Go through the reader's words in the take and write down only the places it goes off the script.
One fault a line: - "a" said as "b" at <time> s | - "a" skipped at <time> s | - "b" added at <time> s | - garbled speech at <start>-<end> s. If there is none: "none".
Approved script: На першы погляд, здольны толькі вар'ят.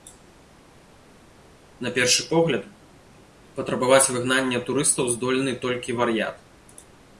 - "патрабаваць выгнання турыстаў" added at 3.6 s